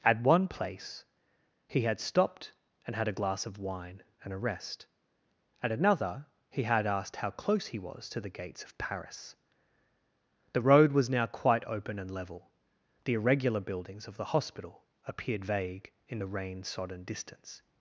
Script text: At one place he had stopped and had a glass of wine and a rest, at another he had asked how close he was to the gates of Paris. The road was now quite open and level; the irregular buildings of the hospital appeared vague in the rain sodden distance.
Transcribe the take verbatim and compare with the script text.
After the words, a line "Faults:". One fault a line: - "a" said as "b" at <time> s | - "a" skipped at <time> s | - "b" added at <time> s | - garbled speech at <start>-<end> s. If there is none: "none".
At one place he had stopped and had a glass of wine and a rest, at another he had asked how close he was to the gates of Paris. The road was now quite open and level; the irregular buildings of the hospital appeared vague in the rain sodden distance.
Faults:
none